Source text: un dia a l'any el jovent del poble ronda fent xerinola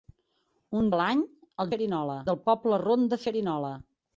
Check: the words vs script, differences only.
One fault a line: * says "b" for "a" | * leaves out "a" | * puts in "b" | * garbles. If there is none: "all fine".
* leaves out "dia"
* says "xerinola" for "jovent"
* leaves out "fent"